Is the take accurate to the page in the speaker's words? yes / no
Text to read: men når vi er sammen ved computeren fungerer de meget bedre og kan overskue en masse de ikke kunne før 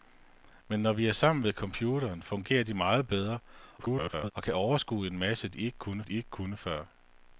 no